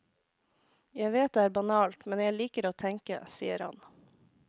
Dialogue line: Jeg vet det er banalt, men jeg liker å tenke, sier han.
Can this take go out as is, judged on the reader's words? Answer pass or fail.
pass